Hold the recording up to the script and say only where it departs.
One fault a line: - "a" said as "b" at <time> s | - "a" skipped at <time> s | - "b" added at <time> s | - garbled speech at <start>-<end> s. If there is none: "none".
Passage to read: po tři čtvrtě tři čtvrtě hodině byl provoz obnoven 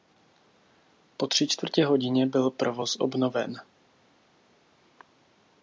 - "tři čtvrtě" skipped at 1.8 s